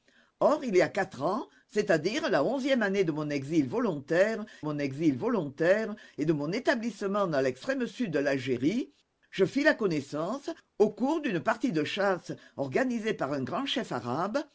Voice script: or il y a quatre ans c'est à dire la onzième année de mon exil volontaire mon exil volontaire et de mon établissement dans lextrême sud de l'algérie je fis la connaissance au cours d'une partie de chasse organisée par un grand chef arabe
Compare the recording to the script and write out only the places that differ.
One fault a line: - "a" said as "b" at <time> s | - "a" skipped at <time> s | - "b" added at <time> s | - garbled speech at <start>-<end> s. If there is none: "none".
none